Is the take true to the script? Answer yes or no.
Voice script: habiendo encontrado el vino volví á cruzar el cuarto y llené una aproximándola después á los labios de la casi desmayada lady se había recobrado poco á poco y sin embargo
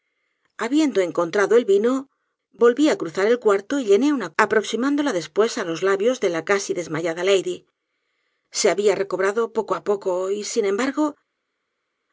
yes